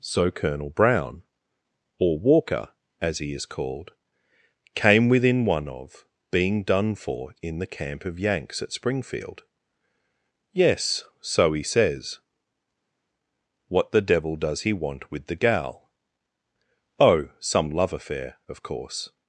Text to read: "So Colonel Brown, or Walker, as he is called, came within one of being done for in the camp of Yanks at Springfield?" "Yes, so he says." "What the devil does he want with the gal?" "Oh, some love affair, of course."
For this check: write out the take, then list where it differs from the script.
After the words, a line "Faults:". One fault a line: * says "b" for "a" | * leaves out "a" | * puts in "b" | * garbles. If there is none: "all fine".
"So Colonel Brown, or Walker, as he is called, came within one of being done for in the camp of Yanks at Springfield?" "Yes, so he says." "What the devil does he want with the gal?" "Oh, some love affair, of course."
Faults:
all fine